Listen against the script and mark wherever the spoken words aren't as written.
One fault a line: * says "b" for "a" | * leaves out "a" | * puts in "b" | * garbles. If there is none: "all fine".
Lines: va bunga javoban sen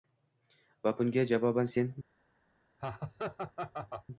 all fine